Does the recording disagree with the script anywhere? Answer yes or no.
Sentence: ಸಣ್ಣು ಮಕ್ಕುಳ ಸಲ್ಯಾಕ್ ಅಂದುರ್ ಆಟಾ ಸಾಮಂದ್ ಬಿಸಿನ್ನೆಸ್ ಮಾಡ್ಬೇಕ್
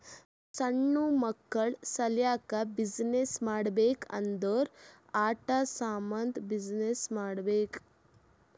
yes